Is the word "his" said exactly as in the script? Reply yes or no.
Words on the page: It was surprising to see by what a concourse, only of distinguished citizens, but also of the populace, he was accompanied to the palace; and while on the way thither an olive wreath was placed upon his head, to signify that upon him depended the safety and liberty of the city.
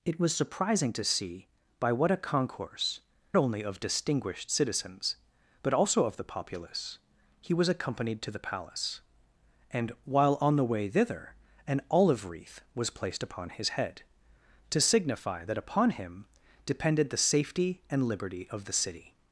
yes